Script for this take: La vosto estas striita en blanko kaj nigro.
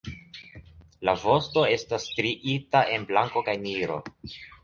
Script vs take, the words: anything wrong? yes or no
no